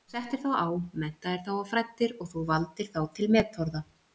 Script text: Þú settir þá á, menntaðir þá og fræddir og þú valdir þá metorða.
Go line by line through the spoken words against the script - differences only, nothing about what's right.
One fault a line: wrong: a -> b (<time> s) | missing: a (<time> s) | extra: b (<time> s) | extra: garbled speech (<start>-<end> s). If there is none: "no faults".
extra: til (3.2 s)